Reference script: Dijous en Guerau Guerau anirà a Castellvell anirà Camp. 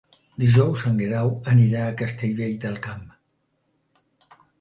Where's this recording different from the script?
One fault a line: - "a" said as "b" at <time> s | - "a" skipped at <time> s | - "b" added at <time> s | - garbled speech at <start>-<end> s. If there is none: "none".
- "Guerau" skipped at 1.3 s
- "anirà" said as "del" at 2.6 s